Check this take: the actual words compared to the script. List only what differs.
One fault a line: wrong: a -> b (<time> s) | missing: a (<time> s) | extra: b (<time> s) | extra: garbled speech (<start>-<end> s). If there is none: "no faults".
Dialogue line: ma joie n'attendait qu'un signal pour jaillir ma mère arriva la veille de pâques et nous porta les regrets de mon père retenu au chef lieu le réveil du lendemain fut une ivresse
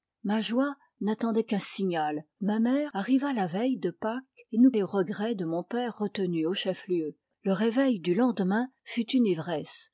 missing: pour jaillir (2.2 s)
missing: porta (4.7 s)